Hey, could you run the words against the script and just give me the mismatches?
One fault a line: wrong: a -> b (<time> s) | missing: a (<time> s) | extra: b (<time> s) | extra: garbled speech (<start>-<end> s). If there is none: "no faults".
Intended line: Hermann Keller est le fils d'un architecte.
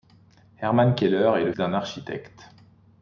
missing: fils (1.5 s)